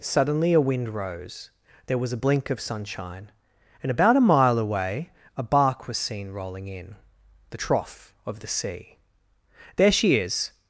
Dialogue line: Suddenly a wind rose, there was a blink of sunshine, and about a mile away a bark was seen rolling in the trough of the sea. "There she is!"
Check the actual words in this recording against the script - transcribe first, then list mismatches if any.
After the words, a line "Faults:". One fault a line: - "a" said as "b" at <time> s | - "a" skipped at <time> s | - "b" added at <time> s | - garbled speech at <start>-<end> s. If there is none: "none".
Suddenly a wind rose, there was a blink of sunshine, and about a mile away a bark was seen rolling in the trough of the sea. "There she is!"
Faults:
none